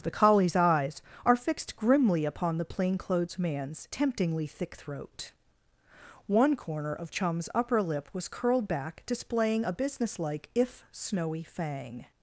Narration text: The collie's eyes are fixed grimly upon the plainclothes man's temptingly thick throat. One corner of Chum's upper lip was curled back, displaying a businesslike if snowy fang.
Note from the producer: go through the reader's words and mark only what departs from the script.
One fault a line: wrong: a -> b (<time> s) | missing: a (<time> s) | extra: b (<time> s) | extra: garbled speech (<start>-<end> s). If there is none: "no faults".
no faults